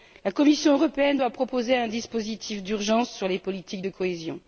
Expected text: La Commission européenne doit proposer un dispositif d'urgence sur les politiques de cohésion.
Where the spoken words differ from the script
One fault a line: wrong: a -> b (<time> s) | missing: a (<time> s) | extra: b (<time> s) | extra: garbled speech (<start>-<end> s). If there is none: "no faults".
no faults